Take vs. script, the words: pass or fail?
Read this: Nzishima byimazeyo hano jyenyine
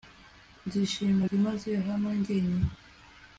pass